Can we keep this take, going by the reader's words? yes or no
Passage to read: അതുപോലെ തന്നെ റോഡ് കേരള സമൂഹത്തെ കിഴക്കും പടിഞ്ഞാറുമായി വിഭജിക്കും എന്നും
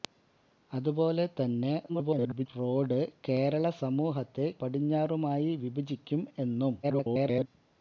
no